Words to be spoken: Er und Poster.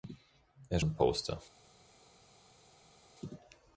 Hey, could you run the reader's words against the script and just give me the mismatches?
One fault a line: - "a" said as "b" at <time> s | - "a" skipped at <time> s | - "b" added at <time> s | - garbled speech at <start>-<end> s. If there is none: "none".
none